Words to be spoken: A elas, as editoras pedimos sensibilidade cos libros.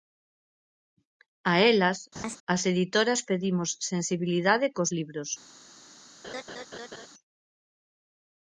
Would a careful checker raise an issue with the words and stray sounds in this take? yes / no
yes